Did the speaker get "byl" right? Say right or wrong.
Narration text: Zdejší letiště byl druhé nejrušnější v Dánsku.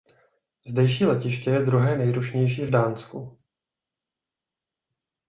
wrong